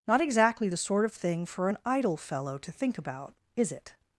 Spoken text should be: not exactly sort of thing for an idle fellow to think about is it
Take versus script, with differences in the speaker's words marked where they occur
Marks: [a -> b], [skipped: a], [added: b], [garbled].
not exactly [added: the] sort of thing for an idle fellow to think about is it